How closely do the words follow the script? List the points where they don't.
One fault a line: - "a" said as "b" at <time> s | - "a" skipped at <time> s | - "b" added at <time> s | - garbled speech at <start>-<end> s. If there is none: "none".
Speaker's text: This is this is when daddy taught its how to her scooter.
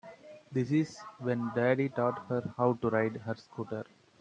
- "this is" skipped at 0.9 s
- "its" said as "her" at 2.3 s
- "ride" added at 2.9 s